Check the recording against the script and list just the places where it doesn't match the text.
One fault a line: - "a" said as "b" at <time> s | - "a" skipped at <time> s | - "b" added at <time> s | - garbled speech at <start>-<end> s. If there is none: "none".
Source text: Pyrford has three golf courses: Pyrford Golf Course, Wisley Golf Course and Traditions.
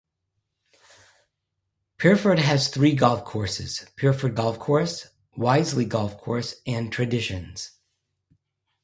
none